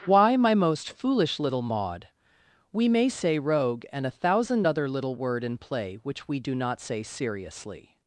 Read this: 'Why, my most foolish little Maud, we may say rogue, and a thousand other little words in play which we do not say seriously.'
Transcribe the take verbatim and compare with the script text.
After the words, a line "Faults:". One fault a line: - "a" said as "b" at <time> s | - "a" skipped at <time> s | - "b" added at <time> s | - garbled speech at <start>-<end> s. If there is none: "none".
'Why, my most foolish little Maud, we may say rogue, and a thousand other little word in play which we do not say seriously.'
Faults:
- "words" said as "word" at 5.2 s